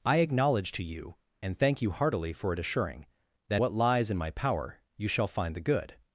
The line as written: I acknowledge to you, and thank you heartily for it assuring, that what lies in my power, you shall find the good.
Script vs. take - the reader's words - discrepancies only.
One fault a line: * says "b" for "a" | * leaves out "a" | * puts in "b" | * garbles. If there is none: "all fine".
all fine